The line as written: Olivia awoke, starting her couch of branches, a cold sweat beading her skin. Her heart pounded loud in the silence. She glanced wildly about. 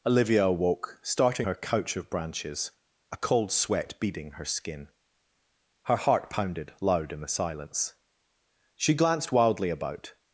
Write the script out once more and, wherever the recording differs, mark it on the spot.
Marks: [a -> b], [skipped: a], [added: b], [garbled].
Olivia awoke, starting her couch of branches, a cold sweat beading her skin. Her heart pounded loud in the silence. She glanced wildly about.